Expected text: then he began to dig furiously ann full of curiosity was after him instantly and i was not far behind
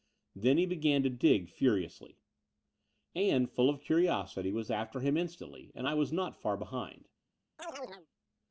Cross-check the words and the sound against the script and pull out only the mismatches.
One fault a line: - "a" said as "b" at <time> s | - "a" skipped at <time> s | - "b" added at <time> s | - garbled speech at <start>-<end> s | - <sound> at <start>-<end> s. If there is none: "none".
- chirp at 7.6-8.1 s